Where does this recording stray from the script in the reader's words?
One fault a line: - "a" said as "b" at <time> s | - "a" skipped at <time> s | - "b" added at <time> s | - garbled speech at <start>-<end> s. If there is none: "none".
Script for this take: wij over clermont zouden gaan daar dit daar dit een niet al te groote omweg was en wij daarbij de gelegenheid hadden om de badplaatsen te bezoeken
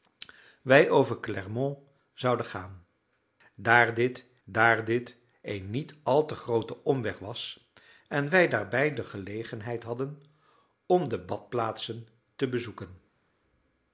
none